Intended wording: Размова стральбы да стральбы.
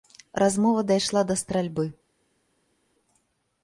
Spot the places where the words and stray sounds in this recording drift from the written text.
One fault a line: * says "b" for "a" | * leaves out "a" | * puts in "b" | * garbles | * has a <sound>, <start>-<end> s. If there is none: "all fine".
* says "дайшла" for "стральбы"